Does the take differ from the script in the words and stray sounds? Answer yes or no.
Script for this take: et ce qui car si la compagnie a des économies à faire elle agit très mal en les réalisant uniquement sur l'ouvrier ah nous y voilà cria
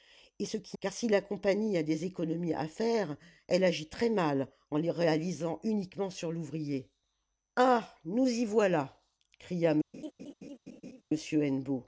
yes